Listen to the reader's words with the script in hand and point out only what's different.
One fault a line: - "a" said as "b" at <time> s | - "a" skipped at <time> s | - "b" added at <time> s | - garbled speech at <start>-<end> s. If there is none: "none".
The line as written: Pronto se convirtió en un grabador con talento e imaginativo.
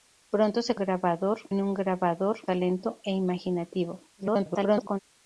- "convirtió" said as "grabador" at 0.7 s
- "con" skipped at 2.5 s
- garbled speech at 4.2-5.0 s